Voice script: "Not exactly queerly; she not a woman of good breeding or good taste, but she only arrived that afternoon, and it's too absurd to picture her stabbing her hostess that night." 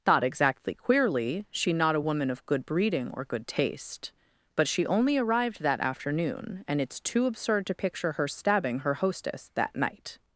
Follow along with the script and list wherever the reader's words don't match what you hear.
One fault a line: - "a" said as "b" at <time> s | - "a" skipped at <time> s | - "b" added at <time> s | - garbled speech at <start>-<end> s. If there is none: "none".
none